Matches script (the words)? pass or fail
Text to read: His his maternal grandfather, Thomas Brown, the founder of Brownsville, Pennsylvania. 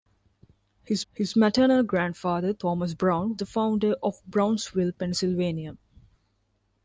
pass